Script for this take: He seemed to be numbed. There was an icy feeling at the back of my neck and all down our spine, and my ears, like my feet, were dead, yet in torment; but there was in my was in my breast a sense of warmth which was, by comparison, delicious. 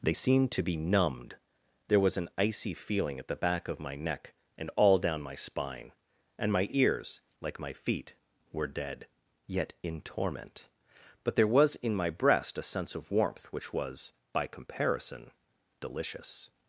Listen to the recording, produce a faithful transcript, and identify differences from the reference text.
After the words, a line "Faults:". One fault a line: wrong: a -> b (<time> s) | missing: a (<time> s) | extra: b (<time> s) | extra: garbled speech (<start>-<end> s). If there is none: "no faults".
They seemed to be numbed. There was an icy feeling at the back of my neck and all down my spine, and my ears, like my feet, were dead, yet in torment; but there was in my breast a sense of warmth which was, by comparison, delicious.
Faults:
wrong: He -> They (0.0 s)
wrong: our -> my (5.2 s)
missing: was in my (12.1 s)